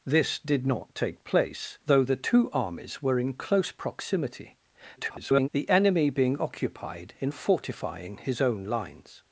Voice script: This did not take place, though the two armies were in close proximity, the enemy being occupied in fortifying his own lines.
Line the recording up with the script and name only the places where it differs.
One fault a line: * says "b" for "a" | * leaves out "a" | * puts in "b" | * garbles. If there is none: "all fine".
* garbles